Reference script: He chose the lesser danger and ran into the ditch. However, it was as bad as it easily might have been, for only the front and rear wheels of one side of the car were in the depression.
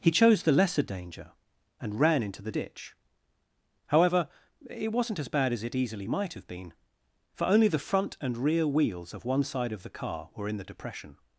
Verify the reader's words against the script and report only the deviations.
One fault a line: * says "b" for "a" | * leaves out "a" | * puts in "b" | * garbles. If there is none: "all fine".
* says "wasn't" for "was"